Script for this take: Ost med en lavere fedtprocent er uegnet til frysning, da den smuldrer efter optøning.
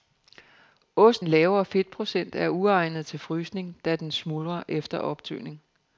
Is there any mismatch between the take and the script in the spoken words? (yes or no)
yes